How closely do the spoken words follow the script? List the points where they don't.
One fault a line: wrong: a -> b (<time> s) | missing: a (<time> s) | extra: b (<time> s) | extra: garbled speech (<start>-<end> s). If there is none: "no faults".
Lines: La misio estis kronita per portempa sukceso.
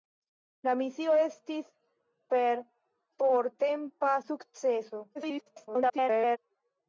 missing: kronita (1.7 s)
extra: garbled speech (5.1-6.4 s)